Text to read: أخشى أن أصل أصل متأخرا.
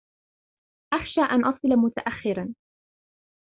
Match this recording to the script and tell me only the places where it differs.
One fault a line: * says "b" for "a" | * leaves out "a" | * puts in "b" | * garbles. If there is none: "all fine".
* leaves out "أصل"